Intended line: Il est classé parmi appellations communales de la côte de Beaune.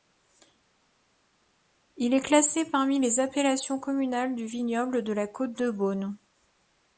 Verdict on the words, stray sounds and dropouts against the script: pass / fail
fail